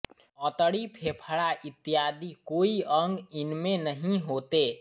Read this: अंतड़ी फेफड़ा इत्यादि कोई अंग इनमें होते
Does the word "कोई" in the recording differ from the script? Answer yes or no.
no